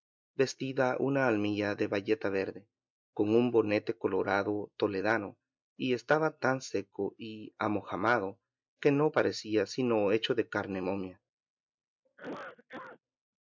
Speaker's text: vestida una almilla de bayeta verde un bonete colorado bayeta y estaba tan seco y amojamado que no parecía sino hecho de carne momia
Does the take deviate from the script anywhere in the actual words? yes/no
yes